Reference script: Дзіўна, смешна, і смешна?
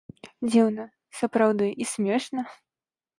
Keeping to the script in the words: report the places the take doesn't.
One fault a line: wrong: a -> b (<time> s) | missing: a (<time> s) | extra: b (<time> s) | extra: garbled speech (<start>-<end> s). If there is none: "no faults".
wrong: смешна -> сапраўды (1.2 s)